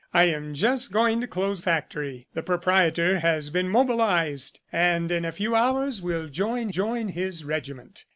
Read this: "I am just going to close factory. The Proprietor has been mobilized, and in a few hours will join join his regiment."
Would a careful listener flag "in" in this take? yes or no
no